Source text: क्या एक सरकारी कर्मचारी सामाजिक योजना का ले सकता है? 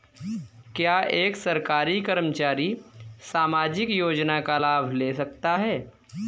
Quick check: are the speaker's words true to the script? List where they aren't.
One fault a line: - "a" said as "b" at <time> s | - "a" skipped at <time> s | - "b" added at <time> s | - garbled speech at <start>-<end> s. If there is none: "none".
- "लाभ" added at 4.5 s